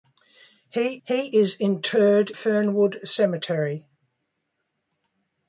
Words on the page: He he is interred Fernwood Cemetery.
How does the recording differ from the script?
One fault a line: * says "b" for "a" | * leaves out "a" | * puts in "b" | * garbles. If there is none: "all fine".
all fine